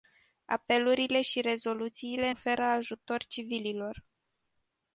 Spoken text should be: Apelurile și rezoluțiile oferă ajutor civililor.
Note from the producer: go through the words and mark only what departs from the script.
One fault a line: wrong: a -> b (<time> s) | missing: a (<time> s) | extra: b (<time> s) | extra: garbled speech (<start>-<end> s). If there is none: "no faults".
no faults